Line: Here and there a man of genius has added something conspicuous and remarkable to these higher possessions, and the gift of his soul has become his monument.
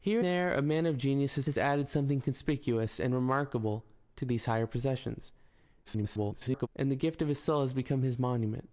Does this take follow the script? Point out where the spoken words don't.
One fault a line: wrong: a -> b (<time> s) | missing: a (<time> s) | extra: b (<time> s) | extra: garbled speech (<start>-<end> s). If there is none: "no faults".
missing: and (0.2 s)
extra: has (1.5 s)
extra: garbled speech (5.8-6.7 s)